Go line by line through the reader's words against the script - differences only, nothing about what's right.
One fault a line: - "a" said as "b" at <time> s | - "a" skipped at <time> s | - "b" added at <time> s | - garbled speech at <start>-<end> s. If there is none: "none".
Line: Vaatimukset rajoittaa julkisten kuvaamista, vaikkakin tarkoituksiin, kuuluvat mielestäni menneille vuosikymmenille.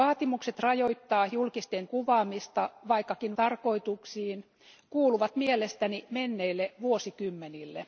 none